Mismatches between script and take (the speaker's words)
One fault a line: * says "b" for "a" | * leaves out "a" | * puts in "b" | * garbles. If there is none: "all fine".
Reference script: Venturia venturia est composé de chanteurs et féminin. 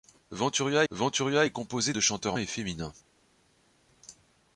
all fine